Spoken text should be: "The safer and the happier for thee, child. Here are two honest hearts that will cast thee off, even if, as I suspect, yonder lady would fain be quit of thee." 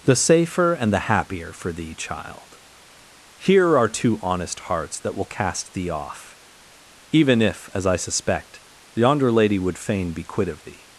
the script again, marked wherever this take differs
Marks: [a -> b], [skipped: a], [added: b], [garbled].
"The safer and the happier for thee, child. Here are two honest hearts that will cast thee off, even if, as I suspect, yonder lady would fain be quit of thee."